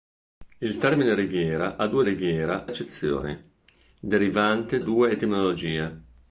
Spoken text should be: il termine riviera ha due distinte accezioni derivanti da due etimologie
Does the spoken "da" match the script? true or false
false